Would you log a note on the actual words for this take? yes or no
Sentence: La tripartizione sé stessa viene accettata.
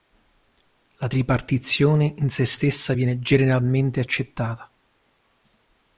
yes